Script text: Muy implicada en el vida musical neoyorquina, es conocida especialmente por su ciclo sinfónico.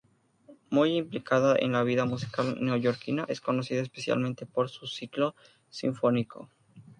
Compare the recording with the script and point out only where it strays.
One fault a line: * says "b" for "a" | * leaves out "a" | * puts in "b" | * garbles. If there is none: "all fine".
* says "la" for "el"